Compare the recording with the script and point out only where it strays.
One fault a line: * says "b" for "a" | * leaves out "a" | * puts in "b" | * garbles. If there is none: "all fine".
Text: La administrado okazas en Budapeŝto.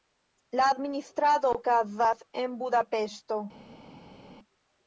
all fine